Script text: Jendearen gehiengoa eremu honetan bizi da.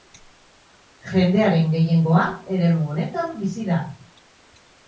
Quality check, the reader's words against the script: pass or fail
pass